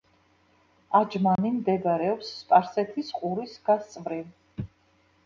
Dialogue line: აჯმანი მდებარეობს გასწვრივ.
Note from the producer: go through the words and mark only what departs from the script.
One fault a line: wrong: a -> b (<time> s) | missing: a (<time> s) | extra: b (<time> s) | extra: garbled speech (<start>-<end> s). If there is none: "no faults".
extra: სპარსეთის ყურის (2.4 s)